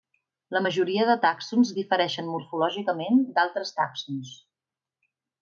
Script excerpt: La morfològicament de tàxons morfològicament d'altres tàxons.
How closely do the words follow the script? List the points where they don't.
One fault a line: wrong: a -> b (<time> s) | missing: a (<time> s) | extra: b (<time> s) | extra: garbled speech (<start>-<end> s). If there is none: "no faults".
wrong: morfològicament -> majoria (0.6 s)
extra: difereixen (1.8 s)